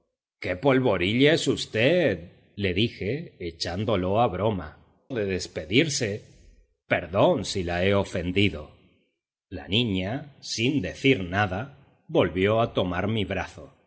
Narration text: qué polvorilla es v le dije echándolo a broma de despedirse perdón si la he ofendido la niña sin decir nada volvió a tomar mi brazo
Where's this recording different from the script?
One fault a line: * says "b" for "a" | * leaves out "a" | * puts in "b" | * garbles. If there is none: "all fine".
all fine